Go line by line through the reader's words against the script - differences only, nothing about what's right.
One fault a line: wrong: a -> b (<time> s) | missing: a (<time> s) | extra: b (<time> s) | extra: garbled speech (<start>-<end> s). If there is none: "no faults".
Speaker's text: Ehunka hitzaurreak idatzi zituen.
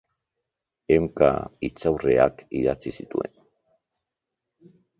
no faults